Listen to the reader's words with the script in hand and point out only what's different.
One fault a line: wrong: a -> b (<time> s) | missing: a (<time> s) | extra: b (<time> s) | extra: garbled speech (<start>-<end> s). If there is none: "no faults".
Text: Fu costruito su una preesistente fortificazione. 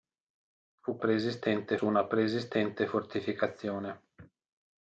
wrong: costruito -> preesistente (1.0 s)